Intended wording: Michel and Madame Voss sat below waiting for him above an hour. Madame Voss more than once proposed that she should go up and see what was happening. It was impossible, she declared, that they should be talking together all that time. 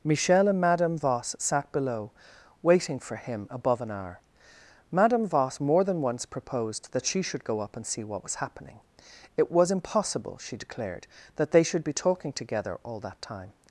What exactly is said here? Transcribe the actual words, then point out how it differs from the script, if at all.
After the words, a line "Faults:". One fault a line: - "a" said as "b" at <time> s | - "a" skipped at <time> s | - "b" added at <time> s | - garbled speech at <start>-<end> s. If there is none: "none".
Michel and Madame Voss sat below waiting for him above an hour. Madame Voss more than once proposed that she should go up and see what was happening. It was impossible, she declared, that they should be talking together all that time.
Faults:
none